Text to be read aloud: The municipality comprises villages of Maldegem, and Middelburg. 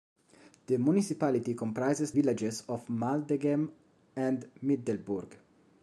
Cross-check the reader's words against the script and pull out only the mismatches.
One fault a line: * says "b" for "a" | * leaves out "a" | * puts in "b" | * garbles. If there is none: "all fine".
all fine